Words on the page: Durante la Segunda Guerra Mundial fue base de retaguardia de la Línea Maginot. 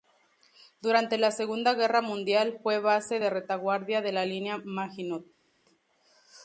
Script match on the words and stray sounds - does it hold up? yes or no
yes